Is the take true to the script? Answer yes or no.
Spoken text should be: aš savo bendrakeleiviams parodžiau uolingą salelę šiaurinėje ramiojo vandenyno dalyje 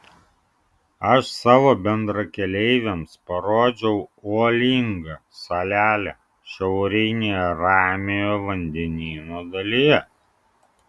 yes